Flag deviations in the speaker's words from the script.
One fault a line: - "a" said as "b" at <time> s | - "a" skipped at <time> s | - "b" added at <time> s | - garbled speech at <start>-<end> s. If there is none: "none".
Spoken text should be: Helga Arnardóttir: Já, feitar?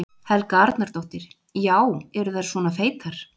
- "eru þær svona" added at 2.2 s